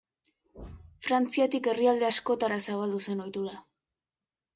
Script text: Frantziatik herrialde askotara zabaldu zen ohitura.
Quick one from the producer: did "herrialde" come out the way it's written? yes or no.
yes